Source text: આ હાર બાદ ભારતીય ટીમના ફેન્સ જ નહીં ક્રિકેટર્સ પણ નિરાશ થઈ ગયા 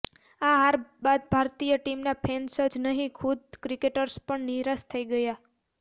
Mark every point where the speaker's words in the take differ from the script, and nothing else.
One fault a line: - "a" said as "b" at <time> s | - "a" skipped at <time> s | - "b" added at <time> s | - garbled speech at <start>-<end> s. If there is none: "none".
- "ખુદ" added at 3.2 s